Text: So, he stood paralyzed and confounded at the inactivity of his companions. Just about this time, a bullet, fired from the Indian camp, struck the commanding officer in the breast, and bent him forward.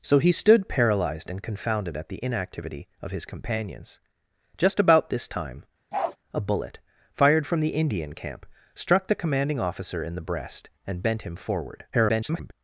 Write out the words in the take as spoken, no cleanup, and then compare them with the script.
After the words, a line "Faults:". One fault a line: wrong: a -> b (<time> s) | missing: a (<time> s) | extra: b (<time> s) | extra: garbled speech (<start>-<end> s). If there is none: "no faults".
So, he stood paralyzed and confounded at the inactivity of his companions. Just about this time, a bullet, fired from the Indian camp, struck the commanding officer in the breast, and bent him forward. [garbled]
Faults:
extra: garbled speech (11.9-12.5 s)